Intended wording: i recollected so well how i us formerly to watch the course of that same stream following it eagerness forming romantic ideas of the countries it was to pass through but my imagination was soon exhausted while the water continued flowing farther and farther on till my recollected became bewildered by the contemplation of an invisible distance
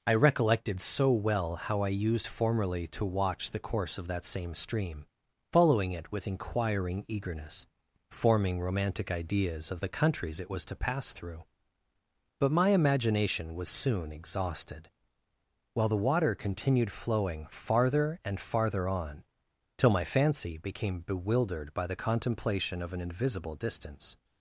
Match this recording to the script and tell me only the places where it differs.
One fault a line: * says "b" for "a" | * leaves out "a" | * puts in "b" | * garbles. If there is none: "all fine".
* says "used" for "us"
* puts in "with inquiring"
* says "fancy" for "recollected"